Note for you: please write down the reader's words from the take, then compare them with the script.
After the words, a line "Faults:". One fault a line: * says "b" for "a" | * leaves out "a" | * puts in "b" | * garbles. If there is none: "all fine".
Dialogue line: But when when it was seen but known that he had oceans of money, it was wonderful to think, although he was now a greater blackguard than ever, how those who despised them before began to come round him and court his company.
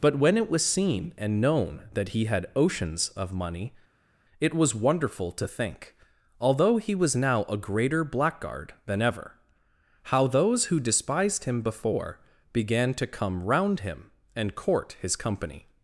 But when it was seen and known that he had oceans of money, it was wonderful to think, although he was now a greater blackguard than ever, how those who despised him before began to come round him and court his company.
Faults:
* leaves out "when"
* says "and" for "but"
* says "him" for "them"